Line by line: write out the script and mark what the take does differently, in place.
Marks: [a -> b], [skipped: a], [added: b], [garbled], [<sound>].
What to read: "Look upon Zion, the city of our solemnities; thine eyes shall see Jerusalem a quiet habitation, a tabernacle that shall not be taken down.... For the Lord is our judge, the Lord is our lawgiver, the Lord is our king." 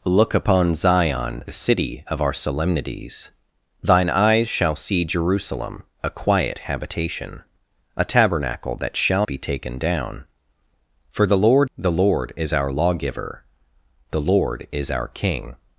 "Look upon Zion, the city of our solemnities; thine eyes shall see Jerusalem a quiet habitation, a tabernacle that shall [skipped: not] be taken down.... For the Lord [skipped: is our judge,] the Lord is our lawgiver, the Lord is our king."